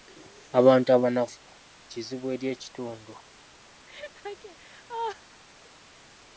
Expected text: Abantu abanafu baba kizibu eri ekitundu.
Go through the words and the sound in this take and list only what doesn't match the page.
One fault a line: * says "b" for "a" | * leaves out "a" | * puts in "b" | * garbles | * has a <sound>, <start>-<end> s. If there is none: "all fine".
* leaves out "baba"
* has a laugh, 3.9-5.4 s